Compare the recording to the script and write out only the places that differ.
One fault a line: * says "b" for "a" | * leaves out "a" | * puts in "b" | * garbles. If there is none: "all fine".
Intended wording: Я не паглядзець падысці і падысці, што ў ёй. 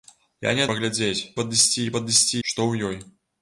all fine